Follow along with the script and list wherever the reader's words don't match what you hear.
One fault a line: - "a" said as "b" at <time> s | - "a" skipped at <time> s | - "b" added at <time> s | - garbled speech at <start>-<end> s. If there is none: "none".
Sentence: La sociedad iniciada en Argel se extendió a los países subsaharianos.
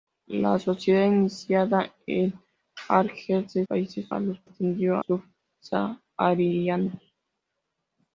- "extendió" said as "países" at 3.7 s
- "países" said as "extendió" at 4.4 s